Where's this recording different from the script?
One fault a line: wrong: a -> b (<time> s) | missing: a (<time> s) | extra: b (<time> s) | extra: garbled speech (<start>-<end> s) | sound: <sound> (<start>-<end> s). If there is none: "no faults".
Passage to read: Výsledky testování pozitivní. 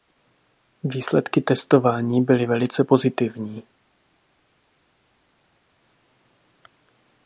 extra: byly velice (2.2 s)